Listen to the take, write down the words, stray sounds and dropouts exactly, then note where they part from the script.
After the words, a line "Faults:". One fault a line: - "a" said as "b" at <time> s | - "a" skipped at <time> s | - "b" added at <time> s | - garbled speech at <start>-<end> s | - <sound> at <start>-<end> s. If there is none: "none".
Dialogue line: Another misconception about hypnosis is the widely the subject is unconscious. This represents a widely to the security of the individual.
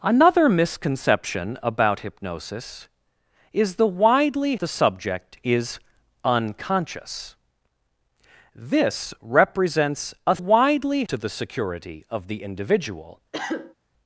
Another misconception about hypnosis is the widely the subject is unconscious. This represents a widely to the security of the individual.
Faults:
- cough at 13.3-13.7 s